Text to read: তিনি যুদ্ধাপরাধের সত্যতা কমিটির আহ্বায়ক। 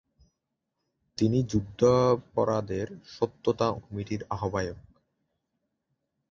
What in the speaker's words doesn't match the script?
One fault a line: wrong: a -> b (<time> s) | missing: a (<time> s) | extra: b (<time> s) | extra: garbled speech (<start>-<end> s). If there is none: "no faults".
no faults